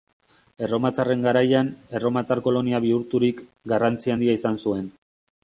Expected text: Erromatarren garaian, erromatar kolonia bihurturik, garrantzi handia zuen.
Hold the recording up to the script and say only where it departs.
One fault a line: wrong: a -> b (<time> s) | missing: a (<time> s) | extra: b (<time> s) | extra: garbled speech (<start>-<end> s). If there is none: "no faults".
extra: izan (4.4 s)